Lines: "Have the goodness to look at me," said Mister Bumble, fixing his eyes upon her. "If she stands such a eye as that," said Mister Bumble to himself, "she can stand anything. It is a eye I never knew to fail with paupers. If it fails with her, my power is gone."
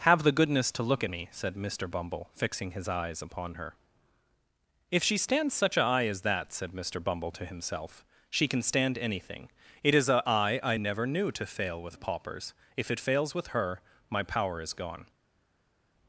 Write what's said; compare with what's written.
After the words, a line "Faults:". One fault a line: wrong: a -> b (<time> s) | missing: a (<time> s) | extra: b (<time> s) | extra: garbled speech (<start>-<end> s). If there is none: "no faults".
"Have the goodness to look at me," said Mister Bumble, fixing his eyes upon her. "If she stands such a eye as that," said Mister Bumble to himself, "she can stand anything. It is a eye I never knew to fail with paupers. If it fails with her, my power is gone."
Faults:
no faults